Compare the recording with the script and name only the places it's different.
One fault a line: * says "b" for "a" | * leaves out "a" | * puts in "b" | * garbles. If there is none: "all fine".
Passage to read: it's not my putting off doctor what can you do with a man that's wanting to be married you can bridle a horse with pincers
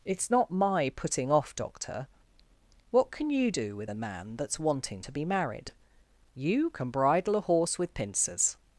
all fine